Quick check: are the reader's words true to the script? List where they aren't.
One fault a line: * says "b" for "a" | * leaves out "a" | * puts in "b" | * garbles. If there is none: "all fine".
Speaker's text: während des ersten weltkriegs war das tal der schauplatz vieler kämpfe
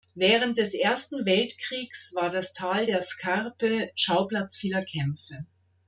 * puts in "scarpe"